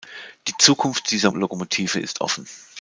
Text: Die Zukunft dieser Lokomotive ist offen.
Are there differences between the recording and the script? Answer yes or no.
no